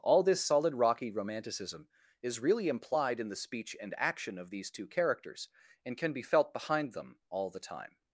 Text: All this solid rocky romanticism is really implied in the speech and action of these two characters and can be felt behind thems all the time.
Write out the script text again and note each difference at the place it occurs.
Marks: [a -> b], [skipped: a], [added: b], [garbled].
All this solid rocky romanticism is really implied in the speech and action of these two characters and can be felt behind [thems -> them] all the time.